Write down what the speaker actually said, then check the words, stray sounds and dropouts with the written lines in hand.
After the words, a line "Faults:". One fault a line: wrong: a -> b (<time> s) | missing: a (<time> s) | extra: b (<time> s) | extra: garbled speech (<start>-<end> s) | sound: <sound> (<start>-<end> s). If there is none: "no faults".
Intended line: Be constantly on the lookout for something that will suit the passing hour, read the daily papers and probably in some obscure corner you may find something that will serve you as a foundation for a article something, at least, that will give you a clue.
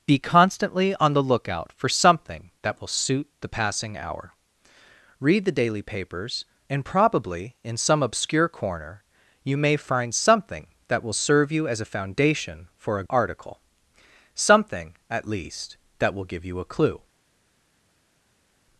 Be constantly on the lookout for something that will suit the passing hour, read the daily papers and probably in some obscure corner you may find something that will serve you as a foundation for a article something, at least, that will give you a clue.
Faults:
no faults